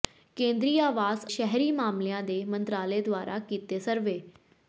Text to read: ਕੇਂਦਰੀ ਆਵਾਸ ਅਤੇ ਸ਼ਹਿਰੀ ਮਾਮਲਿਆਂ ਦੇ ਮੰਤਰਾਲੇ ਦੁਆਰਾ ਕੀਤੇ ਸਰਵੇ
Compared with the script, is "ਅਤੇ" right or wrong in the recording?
wrong